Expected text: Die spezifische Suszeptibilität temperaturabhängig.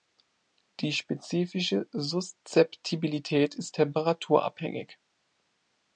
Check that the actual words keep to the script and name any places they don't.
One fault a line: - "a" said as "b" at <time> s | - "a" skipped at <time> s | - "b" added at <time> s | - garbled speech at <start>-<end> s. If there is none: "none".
- "ist" added at 3.5 s